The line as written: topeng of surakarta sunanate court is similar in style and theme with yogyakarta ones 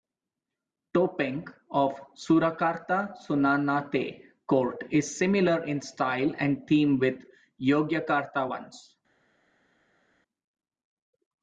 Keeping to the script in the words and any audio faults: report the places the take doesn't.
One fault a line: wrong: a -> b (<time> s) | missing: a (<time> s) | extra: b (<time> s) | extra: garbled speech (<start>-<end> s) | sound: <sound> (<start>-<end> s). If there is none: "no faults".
no faults